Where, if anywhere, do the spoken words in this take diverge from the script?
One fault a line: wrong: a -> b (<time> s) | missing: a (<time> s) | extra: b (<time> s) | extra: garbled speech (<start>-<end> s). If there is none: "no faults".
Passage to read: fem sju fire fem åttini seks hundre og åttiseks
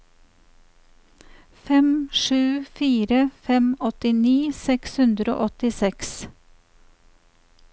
no faults